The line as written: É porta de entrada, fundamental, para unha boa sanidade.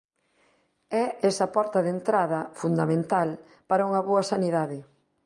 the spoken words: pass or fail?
fail